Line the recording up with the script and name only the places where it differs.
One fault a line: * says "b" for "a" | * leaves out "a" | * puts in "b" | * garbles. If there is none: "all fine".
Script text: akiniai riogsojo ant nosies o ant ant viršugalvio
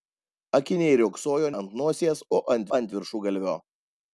all fine